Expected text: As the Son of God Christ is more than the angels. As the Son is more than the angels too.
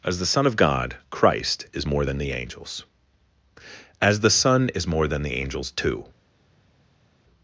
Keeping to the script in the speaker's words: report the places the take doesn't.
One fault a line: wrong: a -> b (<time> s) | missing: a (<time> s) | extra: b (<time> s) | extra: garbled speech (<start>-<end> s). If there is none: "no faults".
no faults